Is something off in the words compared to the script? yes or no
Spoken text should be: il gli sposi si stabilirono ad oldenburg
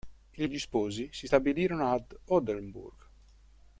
no